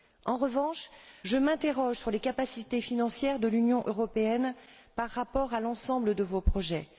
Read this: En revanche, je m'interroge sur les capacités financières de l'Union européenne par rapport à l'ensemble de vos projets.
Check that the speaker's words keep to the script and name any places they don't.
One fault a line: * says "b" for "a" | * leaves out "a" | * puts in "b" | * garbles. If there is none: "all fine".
all fine